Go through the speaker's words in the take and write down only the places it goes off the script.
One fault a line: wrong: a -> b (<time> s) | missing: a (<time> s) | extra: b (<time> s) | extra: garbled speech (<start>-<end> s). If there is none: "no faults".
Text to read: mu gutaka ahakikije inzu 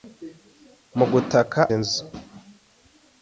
missing: ahakikije (1.6 s)